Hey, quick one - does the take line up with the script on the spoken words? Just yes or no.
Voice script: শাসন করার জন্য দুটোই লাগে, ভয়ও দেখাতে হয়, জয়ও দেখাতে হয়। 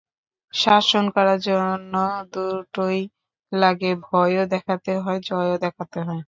yes